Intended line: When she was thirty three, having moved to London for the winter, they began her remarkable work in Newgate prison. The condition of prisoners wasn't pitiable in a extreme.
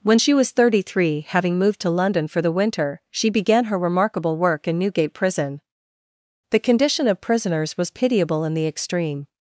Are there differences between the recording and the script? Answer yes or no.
yes